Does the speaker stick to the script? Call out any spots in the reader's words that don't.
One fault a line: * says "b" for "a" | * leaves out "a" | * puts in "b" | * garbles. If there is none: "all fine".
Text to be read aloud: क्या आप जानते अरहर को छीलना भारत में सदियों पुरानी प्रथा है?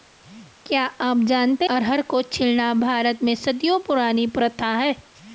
all fine